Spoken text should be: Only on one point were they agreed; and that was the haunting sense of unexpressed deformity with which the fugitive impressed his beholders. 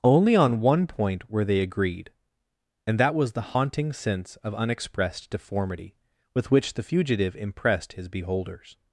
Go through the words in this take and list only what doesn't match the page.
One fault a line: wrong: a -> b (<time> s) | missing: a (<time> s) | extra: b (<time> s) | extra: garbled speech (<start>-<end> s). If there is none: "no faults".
no faults